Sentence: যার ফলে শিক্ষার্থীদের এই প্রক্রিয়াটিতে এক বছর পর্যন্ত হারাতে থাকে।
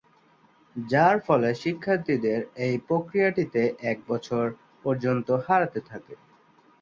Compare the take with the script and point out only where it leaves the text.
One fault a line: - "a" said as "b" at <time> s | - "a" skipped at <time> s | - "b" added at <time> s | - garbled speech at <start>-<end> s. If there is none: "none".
none